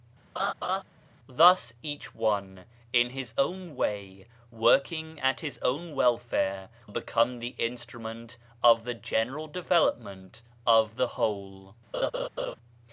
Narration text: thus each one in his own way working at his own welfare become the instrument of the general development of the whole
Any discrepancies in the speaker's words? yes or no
no